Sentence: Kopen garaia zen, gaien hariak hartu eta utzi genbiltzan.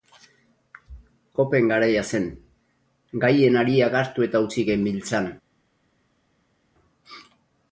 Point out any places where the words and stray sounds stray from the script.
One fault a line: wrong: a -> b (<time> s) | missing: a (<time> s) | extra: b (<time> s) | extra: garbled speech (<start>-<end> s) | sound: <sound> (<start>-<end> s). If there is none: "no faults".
no faults